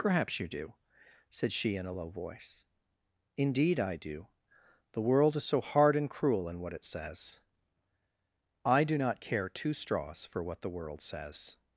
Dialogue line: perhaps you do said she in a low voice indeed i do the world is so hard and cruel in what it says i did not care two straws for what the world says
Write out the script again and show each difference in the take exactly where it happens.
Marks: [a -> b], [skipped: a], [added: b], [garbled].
perhaps you do said she in a low voice indeed i do the world is so hard and cruel in what it says i [did -> do] not care two straws for what the world says